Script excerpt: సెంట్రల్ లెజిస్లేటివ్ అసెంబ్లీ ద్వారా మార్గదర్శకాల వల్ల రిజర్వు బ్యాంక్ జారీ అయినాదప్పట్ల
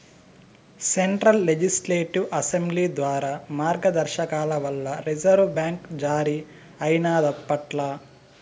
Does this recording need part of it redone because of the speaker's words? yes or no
no